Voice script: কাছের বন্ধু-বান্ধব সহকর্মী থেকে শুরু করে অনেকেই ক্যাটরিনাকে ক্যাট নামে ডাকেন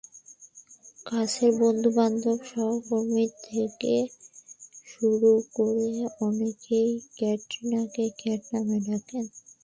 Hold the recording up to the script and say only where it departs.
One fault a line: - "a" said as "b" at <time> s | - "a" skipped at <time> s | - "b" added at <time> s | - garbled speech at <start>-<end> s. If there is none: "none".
none